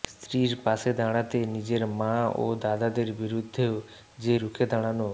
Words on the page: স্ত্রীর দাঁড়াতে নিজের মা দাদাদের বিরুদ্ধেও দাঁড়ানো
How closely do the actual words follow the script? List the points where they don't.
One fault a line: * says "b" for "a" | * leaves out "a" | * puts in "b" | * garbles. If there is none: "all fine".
* puts in "পাশে"
* puts in "ও"
* puts in "যে রুখে"